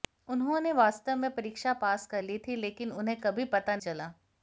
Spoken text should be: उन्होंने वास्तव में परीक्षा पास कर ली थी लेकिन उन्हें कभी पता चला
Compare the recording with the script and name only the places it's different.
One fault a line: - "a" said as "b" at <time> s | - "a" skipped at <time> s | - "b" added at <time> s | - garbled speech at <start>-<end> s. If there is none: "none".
none